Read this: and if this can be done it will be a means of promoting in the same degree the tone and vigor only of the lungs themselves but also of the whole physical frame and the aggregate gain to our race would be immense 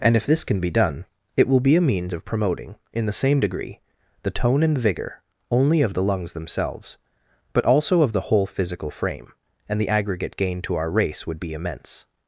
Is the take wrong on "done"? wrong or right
right